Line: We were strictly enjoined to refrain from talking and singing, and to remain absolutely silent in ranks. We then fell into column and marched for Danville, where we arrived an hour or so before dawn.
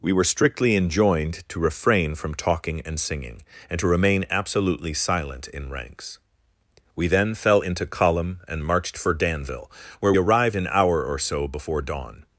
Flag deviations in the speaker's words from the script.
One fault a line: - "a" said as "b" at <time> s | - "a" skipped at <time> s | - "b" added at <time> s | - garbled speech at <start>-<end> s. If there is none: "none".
- "we" skipped at 10.1 s